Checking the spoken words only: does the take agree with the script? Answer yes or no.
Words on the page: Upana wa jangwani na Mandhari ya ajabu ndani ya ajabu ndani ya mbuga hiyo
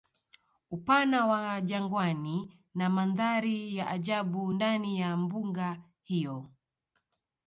no